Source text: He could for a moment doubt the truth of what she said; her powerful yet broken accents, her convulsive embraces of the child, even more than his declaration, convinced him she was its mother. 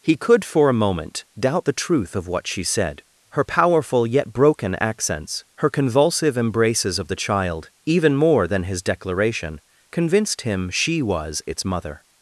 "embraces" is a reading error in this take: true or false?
false